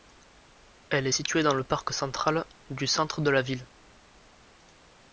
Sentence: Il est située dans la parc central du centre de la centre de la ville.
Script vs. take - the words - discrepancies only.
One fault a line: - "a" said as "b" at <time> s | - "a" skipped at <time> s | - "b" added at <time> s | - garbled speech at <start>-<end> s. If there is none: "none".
- "Il" said as "Elle" at 0.9 s
- "la" said as "le" at 1.5 s
- "centre de la" skipped at 3.4 s